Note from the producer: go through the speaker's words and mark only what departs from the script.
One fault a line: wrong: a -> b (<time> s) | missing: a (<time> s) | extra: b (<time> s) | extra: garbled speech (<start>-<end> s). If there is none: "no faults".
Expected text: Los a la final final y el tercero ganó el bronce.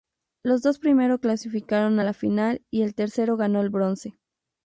extra: dos primero clasificaron (0.6 s)
missing: final (2.6 s)